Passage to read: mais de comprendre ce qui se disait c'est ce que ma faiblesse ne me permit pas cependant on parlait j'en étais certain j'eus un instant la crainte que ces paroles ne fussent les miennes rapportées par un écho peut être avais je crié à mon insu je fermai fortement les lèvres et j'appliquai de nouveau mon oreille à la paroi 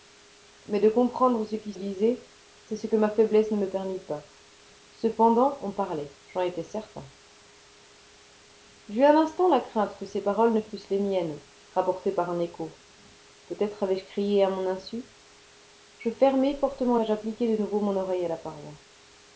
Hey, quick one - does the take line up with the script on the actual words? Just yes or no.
no